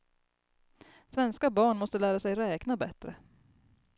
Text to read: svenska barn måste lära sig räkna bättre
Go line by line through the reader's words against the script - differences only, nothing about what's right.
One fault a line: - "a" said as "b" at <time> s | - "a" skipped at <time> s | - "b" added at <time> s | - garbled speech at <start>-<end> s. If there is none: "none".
none